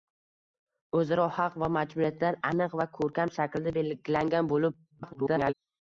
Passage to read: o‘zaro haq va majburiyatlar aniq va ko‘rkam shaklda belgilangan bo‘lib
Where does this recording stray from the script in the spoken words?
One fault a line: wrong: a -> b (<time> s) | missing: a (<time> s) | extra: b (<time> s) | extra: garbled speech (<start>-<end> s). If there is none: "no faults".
extra: garbled speech (4.9-5.5 s)